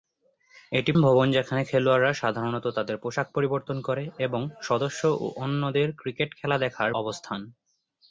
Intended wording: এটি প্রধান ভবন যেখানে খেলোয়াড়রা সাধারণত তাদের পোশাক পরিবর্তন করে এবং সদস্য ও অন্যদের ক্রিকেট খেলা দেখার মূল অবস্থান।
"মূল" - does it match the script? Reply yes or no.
no